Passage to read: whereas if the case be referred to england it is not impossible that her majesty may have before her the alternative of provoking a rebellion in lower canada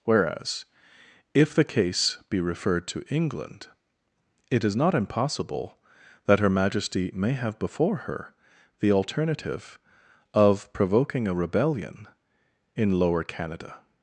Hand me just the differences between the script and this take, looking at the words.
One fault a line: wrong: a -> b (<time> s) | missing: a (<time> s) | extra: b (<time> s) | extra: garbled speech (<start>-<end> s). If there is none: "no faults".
no faults